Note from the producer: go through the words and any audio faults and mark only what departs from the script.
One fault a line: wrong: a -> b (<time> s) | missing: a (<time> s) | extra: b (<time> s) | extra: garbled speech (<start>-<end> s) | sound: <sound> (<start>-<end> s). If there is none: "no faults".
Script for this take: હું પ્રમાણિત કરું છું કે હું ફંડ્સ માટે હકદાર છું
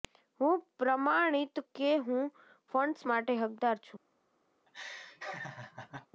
missing: કરું છું (1.6 s)
sound: laugh (4.7-6.1 s)